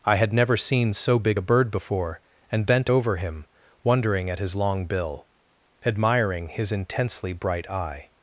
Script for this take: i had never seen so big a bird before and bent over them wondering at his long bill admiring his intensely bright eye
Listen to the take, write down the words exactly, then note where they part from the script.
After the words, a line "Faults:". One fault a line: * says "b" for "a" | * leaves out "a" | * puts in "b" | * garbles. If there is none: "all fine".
i had never seen so big a bird before and bent over him wondering at his long bill admiring his intensely bright eye
Faults:
* says "him" for "them"